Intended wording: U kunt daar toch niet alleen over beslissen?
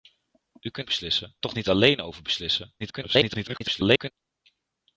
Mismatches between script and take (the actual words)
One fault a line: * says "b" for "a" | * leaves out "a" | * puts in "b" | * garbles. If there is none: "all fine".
* says "beslissen" for "daar"
* garbles